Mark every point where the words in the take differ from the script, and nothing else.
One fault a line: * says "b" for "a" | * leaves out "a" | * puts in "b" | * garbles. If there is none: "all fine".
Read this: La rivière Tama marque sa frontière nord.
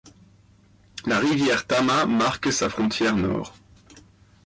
all fine